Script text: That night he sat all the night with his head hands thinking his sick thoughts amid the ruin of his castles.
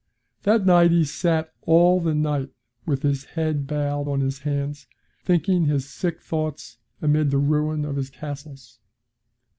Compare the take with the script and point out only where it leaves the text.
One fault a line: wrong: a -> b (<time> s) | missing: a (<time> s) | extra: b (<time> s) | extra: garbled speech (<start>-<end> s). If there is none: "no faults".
extra: bowed on his (3.7 s)